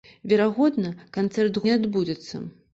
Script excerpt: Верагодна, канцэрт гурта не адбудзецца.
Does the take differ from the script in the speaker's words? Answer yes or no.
yes